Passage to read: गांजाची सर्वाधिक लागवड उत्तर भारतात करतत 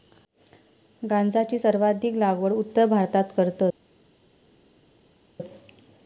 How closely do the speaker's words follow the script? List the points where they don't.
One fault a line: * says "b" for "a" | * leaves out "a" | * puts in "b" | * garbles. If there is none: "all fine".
all fine